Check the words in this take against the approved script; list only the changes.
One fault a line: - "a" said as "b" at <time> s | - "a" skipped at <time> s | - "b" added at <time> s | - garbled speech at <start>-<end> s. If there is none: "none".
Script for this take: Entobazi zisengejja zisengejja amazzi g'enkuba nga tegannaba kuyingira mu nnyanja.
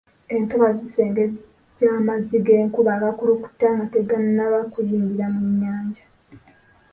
- "zisengejja" skipped at 1.9 s
- "agakulukuta" added at 3.0 s